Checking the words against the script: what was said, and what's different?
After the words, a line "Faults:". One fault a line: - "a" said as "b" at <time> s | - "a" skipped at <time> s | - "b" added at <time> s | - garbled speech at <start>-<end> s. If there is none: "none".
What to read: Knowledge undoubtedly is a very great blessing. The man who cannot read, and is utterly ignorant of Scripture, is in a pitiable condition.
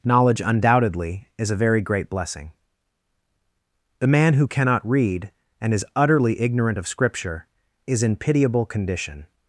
Knowledge undoubtedly is a very great blessing. The man who cannot read, and is utterly ignorant of Scripture, is in pitiable condition.
Faults:
- "a" skipped at 8.2 s